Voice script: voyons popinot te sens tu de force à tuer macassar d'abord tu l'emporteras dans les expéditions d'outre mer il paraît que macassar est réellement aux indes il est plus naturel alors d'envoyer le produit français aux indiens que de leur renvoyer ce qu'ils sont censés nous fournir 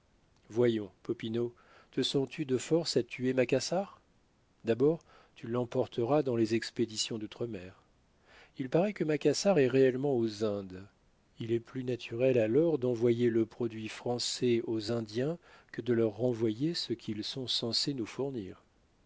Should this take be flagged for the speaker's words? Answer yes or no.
no